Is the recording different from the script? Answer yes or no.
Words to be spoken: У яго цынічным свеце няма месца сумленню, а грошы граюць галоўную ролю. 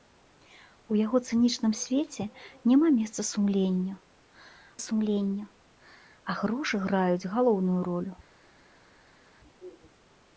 yes